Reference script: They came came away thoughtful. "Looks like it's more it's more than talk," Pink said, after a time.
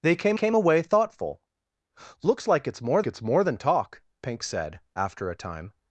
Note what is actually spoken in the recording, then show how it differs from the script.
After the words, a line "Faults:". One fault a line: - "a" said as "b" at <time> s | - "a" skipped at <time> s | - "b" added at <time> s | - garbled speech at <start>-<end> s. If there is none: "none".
They came came away thoughtful. "Looks like it's more it's more than talk," Pink said, after a time.
Faults:
none